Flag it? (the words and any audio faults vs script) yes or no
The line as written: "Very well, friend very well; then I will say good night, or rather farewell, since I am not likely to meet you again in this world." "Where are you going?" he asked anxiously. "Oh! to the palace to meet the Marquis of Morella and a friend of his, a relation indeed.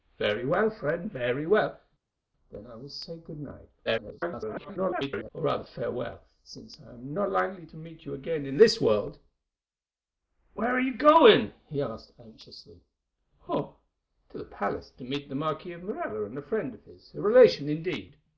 yes